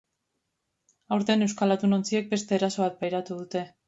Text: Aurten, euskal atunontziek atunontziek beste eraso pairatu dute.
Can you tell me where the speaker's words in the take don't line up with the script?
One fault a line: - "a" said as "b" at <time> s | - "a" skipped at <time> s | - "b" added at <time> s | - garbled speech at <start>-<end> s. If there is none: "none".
- "atunontziek" skipped at 2.3 s
- "bat" added at 2.9 s